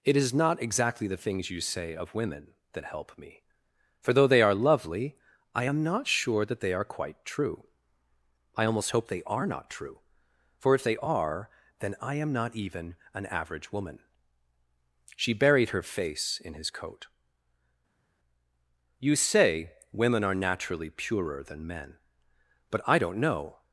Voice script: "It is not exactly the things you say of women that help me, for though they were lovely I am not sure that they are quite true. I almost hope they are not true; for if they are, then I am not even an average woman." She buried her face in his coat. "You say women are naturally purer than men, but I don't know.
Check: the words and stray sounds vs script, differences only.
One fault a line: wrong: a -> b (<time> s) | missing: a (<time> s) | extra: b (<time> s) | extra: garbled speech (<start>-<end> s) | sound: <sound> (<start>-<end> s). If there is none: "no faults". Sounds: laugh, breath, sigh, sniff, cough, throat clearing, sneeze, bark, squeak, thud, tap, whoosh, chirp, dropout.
wrong: were -> are (4.4 s)